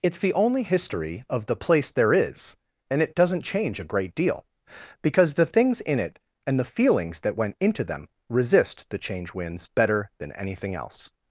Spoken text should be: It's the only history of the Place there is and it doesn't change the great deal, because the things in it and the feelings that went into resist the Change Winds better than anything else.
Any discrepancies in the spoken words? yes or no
yes